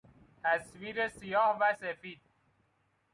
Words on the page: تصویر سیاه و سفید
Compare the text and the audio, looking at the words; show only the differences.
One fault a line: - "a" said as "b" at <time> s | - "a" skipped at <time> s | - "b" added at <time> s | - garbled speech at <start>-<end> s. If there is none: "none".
none